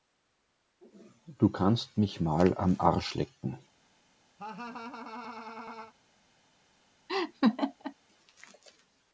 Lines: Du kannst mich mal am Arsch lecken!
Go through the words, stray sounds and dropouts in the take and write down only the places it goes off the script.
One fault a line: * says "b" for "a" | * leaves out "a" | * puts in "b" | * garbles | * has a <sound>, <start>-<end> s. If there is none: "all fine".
* has a laugh, 4.4-5.9 s
* has a laugh, 7.1-7.9 s